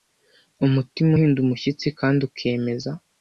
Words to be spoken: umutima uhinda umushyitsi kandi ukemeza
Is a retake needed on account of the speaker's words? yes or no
no